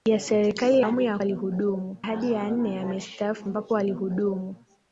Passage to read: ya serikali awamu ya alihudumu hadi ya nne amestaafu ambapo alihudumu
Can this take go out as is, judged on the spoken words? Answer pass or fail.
pass